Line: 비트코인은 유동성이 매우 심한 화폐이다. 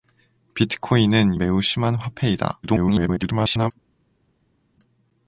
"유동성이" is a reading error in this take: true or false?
true